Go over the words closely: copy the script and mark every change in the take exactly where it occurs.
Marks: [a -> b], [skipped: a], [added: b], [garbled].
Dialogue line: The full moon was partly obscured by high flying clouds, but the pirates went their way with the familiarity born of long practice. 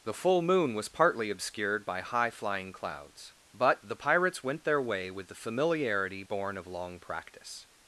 The full moon was partly obscured by high flying clouds, but the pirates went their way with the familiarity born of long practice.